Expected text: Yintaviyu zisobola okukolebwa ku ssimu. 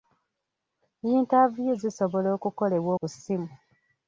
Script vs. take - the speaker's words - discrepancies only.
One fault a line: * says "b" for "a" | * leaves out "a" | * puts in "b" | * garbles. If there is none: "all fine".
all fine